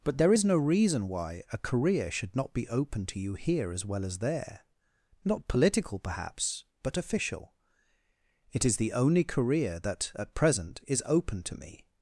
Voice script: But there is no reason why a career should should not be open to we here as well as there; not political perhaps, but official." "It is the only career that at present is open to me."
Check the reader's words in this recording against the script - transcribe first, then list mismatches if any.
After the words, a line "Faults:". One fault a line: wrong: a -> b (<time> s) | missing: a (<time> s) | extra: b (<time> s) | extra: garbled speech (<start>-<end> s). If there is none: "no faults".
But there is no reason why a career should not be open to you here as well as there; not political perhaps, but official." "It is the only career that at present is open to me."
Faults:
missing: should (2.3 s)
wrong: we -> you (3.2 s)